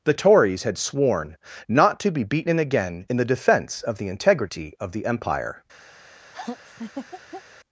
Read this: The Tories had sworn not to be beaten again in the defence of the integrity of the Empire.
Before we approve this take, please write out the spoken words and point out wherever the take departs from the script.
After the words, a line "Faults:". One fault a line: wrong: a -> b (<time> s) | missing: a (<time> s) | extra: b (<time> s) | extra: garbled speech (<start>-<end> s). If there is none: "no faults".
The Tories had sworn not to be beaten again in the defence of the integrity of the Empire.
Faults:
no faults